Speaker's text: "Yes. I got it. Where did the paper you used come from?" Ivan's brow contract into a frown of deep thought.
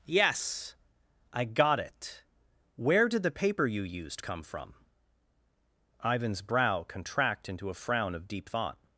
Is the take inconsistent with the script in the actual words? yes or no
no